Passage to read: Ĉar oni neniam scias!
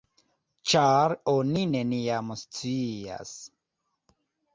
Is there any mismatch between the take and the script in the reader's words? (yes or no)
no